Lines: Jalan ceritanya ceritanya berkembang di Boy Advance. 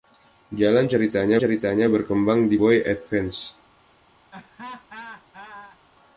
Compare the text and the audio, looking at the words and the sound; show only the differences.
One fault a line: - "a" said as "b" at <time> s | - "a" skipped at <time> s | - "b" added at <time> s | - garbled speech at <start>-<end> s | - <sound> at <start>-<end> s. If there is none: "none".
- laugh at 4.3-5.8 s